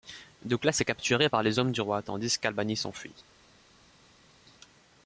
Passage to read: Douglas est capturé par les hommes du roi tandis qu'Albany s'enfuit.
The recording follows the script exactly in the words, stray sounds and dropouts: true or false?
true